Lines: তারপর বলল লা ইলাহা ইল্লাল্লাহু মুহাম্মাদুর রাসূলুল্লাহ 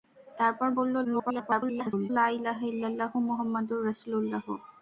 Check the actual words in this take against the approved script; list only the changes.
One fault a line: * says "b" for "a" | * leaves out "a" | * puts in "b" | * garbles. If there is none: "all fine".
* garbles